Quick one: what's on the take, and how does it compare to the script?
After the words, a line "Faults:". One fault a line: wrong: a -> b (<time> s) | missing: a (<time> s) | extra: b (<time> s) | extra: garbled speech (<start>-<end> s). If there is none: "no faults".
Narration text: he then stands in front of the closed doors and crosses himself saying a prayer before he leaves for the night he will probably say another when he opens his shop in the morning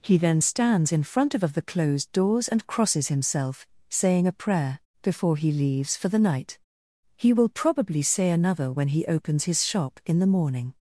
he then stands in front of of the closed doors and crosses himself saying a prayer before he leaves for the night he will probably say another when he opens his shop in the morning
Faults:
extra: of (1.4 s)